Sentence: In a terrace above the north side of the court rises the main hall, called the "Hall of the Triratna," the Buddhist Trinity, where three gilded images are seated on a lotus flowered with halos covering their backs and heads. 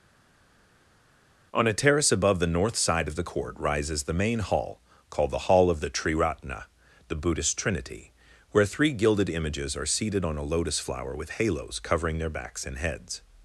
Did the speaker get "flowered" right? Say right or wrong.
wrong